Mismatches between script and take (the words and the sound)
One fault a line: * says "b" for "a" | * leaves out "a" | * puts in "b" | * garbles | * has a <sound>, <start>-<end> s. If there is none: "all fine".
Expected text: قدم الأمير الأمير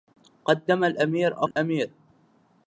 * has a dropout, 1.5-1.6 s